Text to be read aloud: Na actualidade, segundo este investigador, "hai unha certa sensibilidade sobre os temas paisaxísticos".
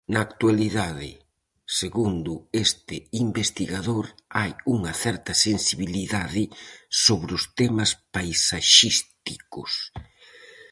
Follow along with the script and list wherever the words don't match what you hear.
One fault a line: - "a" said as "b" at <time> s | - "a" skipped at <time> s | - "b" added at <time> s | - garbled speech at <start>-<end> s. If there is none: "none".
none